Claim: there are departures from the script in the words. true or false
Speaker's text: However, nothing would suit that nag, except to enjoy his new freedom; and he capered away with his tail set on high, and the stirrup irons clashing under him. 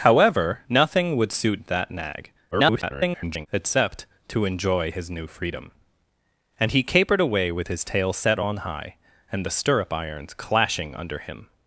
true